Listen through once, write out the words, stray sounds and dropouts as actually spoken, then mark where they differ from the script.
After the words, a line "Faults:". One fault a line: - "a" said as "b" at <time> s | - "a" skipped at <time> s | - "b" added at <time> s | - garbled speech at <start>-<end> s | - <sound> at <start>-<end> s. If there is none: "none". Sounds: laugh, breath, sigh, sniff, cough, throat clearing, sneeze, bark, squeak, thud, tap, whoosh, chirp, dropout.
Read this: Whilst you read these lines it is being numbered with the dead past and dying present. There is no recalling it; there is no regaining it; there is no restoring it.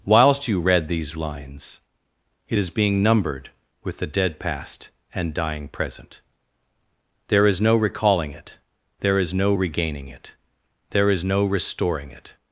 Whilst you read these lines it is being numbered with the dead past and dying present. There is no recalling it; there is no regaining it; there is no restoring it.
Faults:
none